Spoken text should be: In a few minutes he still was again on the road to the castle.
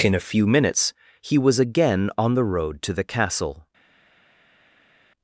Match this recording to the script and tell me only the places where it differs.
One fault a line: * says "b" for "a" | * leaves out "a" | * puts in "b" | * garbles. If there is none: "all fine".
* leaves out "still"